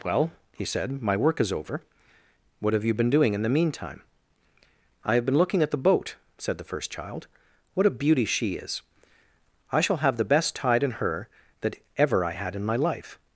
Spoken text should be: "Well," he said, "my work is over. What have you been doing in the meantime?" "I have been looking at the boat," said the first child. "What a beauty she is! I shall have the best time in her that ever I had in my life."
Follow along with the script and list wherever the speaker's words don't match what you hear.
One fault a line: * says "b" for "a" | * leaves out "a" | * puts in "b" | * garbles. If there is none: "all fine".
* says "tide" for "time"